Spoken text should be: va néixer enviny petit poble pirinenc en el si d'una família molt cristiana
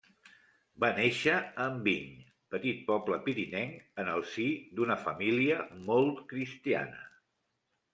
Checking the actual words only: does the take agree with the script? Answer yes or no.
no